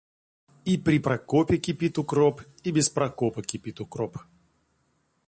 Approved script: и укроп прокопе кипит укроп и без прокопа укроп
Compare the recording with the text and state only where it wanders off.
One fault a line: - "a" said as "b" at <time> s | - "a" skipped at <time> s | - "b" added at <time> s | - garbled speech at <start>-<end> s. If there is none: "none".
- "укроп" said as "при" at 0.8 s
- "кипит" added at 3.4 s